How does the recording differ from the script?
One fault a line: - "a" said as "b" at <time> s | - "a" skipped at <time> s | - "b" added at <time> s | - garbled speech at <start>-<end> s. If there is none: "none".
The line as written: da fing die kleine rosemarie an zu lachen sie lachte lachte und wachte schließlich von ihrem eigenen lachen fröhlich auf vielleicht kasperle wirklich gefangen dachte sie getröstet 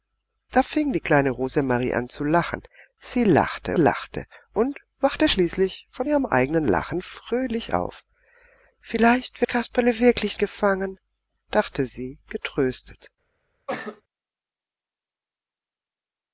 none